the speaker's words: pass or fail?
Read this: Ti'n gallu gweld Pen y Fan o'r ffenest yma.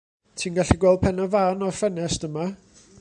pass